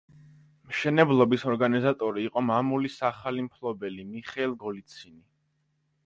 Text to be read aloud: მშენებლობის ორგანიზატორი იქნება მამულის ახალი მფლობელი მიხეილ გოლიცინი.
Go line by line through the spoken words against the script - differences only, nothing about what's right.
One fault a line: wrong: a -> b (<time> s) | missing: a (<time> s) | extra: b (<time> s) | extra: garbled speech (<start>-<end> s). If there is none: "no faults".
wrong: იქნება -> იყო (2.3 s)